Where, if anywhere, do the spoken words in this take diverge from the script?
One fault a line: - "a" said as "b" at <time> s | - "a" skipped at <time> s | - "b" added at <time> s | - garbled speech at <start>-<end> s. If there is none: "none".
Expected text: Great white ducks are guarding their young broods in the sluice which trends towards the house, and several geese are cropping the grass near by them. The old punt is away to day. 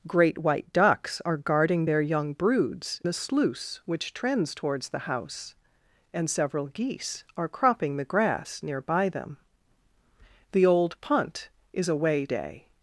- "in" skipped at 3.0 s
- "to" skipped at 12.3 s